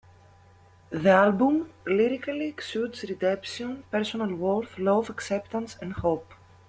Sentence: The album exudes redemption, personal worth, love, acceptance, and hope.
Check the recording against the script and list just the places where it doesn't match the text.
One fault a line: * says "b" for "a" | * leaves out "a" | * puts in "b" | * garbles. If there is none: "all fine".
* puts in "lyrically"